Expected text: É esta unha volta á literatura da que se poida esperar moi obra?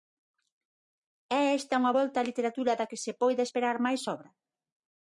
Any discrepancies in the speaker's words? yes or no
yes